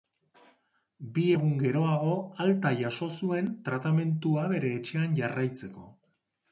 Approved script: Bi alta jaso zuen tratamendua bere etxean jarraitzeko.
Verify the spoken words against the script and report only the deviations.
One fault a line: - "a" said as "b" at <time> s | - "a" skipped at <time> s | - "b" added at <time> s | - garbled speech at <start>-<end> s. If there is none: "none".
- "egun geroago" added at 1.4 s